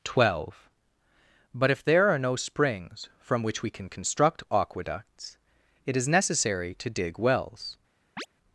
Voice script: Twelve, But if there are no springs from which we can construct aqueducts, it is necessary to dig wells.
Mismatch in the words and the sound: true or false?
true